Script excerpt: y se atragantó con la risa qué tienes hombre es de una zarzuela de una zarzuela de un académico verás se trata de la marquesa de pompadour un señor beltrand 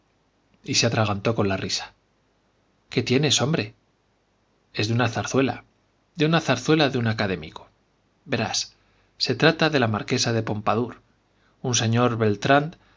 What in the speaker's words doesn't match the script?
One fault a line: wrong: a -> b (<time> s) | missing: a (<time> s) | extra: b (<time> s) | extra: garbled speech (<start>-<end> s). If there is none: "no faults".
no faults